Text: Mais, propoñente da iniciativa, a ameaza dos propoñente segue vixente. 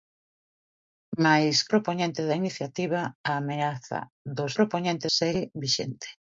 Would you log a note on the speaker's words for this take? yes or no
no